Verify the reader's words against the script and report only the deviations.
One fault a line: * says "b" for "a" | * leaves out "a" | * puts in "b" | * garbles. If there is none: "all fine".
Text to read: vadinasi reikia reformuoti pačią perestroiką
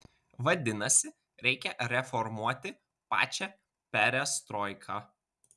all fine